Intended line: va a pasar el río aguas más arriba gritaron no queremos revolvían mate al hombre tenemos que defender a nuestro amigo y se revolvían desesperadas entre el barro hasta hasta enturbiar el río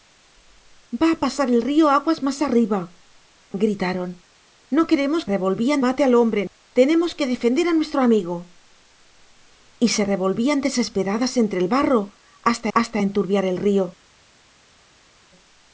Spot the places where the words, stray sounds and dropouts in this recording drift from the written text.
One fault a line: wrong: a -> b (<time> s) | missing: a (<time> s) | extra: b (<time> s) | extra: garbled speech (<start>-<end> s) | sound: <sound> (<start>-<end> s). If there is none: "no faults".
no faults